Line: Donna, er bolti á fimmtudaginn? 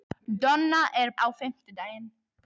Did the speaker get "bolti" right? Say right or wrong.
wrong